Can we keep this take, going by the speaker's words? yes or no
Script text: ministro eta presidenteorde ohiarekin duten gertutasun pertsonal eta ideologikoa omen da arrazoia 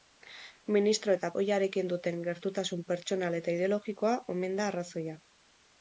no